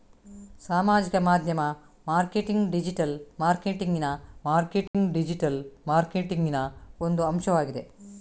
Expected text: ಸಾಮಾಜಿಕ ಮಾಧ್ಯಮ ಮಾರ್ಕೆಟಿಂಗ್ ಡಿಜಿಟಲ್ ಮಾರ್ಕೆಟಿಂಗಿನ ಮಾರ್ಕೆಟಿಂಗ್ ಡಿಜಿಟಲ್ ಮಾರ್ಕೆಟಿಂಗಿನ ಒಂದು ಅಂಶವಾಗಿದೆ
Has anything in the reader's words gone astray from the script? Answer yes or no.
no